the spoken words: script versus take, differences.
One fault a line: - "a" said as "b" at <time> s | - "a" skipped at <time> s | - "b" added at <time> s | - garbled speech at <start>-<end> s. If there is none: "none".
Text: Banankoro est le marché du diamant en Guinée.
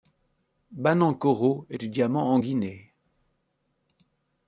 - "le marché" skipped at 1.8 s